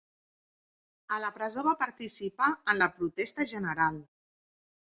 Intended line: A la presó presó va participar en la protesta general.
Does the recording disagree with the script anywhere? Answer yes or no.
yes